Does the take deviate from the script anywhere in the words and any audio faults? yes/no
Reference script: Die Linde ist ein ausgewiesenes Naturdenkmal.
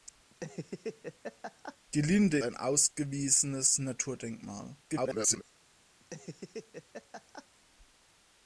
yes